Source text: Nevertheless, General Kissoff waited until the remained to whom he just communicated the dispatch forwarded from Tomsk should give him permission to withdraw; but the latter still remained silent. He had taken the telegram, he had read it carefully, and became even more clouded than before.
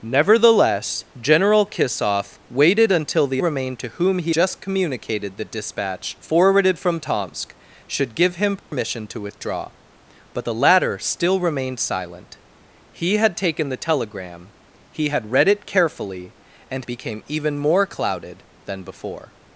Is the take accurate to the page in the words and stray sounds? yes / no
no